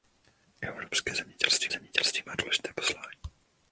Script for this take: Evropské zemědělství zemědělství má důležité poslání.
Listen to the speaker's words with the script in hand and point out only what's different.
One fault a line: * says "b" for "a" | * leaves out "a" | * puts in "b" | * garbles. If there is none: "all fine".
all fine